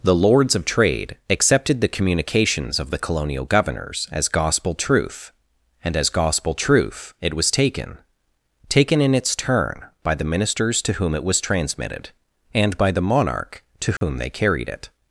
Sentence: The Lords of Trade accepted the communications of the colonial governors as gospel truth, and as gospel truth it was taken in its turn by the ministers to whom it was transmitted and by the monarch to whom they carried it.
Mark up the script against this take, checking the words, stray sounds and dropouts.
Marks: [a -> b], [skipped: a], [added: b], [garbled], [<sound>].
The Lords of Trade accepted the communications of the colonial governors as gospel truth, and as gospel truth it was taken [added: taken] in its turn by the ministers to whom it was transmitted and by the monarch to whom [dropout] they carried it.